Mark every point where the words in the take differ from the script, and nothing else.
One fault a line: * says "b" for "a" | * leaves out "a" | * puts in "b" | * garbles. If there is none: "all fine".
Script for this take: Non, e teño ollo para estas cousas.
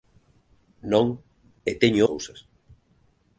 * leaves out "ollo para estas"